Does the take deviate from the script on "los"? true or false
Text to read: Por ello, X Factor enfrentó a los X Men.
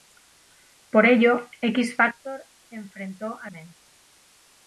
true